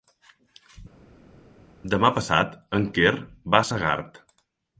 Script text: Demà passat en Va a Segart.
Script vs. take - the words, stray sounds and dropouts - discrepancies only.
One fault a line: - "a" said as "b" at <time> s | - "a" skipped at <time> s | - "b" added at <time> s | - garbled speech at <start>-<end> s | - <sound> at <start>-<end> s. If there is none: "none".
- "Quer" added at 3.0 s